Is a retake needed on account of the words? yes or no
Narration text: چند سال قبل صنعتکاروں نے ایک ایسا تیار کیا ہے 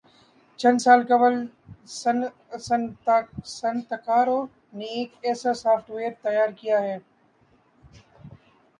yes